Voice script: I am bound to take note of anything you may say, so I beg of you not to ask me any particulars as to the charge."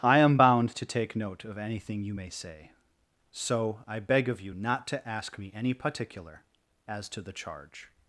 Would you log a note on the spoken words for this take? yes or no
yes